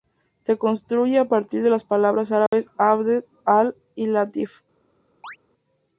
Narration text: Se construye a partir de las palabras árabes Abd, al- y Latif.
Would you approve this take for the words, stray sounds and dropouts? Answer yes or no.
no